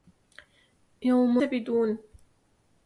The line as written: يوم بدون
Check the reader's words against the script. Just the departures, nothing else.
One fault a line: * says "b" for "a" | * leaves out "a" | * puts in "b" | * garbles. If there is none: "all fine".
all fine